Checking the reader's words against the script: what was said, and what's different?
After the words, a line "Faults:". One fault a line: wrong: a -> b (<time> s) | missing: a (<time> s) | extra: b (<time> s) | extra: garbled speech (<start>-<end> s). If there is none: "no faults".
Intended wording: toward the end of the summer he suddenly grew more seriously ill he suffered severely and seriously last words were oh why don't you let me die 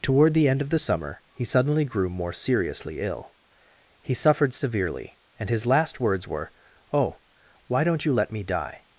toward the end of the summer he suddenly grew more seriously ill he suffered severely and his last words were oh why don't you let me die
Faults:
wrong: seriously -> his (5.5 s)